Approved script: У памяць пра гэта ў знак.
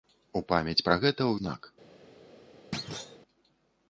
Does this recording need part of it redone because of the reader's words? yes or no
no